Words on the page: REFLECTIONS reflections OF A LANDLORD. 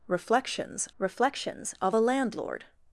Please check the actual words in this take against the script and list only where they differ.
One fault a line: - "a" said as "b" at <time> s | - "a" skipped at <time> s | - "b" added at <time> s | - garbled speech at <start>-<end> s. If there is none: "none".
none